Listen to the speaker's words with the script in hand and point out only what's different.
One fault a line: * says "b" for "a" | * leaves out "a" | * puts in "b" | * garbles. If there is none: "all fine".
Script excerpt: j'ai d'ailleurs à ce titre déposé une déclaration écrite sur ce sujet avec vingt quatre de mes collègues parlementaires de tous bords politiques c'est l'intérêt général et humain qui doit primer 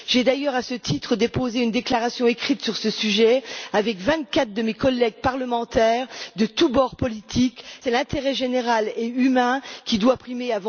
all fine